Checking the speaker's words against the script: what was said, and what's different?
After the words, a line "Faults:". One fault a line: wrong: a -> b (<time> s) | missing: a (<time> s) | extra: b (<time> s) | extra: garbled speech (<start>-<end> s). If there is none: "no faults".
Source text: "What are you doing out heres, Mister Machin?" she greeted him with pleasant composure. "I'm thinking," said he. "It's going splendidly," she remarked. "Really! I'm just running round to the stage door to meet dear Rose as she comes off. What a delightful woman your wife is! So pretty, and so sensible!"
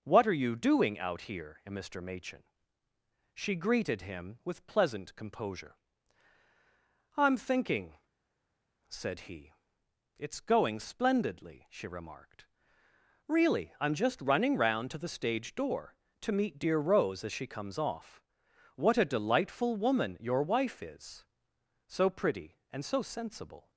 "What are you doing out here, Mister Machin?" she greeted him with pleasant composure. "I'm thinking," said he. "It's going splendidly," she remarked. "Really! I'm just running round to the stage door to meet dear Rose as she comes off. What a delightful woman your wife is! So pretty, and so sensible!"
Faults:
wrong: heres -> here (1.3 s)